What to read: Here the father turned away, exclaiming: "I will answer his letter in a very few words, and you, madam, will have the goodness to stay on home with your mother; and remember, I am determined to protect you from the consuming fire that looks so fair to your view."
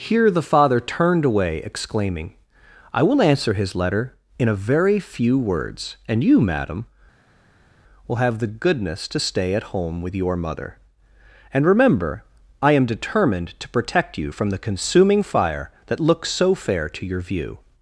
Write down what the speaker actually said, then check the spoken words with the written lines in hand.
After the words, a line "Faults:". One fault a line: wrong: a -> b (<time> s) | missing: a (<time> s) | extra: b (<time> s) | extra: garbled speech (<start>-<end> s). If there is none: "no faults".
Here the father turned away, exclaiming: "I will answer his letter in a very few words, and you, madam, will have the goodness to stay at home with your mother; and remember, I am determined to protect you from the consuming fire that looks so fair to your view."
Faults:
wrong: on -> at (9.5 s)